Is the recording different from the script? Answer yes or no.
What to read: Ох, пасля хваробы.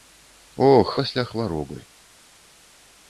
no